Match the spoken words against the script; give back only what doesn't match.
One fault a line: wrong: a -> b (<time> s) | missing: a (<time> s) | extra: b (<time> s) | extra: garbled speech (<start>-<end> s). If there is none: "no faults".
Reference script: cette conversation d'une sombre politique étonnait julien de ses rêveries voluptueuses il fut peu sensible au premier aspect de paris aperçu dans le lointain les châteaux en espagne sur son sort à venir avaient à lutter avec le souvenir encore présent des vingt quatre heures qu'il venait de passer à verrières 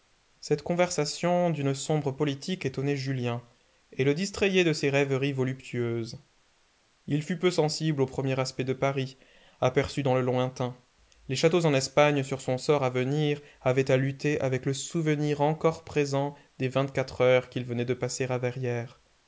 extra: et le distrayait (3.9 s)